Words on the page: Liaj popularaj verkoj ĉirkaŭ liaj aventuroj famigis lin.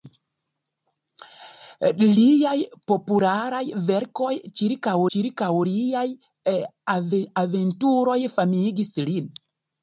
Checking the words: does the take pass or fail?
fail